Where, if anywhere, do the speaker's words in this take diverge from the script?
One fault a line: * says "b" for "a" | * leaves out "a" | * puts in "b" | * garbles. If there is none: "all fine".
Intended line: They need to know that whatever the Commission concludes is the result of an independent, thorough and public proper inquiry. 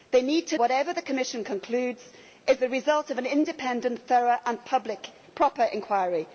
* leaves out "know that"